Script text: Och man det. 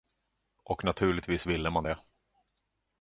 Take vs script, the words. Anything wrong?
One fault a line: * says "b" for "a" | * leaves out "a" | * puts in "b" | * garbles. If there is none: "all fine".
* puts in "naturligtvis ville"